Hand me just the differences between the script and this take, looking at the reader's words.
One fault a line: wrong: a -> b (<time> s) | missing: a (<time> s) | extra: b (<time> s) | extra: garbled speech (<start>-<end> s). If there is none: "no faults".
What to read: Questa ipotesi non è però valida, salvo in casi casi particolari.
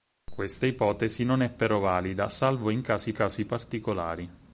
no faults